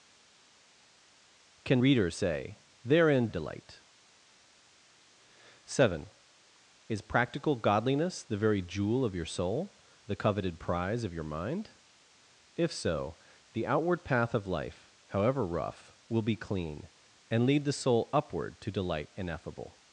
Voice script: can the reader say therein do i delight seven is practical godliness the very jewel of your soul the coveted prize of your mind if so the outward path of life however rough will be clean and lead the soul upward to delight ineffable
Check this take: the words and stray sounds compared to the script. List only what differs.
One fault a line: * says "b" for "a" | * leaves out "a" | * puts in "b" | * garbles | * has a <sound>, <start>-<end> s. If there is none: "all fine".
* leaves out "the"
* leaves out "do i"